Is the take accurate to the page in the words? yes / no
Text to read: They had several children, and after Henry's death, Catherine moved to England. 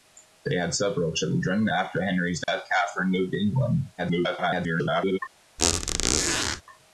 no